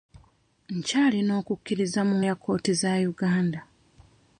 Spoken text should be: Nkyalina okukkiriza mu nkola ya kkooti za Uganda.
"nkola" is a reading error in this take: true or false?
true